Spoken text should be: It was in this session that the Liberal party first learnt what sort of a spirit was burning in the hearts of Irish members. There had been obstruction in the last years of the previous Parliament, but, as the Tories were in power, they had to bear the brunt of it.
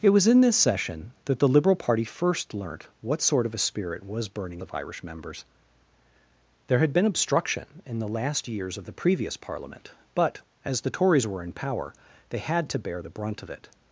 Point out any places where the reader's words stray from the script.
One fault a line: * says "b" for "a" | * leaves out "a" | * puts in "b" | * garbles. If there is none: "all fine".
* leaves out "in the hearts"